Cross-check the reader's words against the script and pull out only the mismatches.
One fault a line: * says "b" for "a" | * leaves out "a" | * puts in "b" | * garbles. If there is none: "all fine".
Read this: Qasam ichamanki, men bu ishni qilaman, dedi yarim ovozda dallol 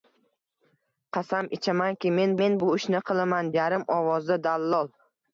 * puts in "men"
* leaves out "dedi"